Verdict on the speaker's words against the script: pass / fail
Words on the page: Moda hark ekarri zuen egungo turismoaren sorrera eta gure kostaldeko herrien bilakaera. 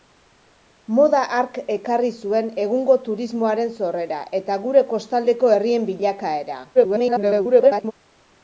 fail